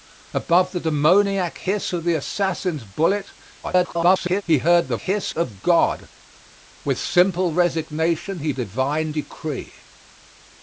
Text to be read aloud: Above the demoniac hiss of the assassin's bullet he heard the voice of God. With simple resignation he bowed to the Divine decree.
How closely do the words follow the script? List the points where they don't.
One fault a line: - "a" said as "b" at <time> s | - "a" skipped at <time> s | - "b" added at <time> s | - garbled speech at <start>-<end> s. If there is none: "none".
- garbled speech at 3.6-4.4 s
- "voice" said as "hiss" at 5.0 s
- "bowed to the" skipped at 8.5 s